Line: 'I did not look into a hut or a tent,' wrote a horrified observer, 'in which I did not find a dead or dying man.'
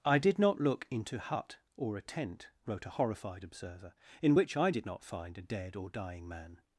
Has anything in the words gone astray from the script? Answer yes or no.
yes